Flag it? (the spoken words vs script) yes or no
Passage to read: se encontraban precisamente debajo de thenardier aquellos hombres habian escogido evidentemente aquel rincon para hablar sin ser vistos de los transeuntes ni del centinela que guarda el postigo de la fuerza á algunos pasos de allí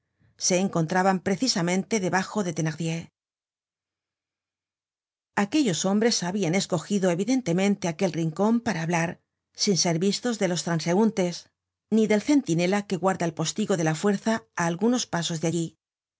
no